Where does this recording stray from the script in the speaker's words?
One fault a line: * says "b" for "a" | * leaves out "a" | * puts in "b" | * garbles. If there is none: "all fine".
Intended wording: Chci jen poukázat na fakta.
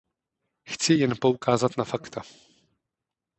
all fine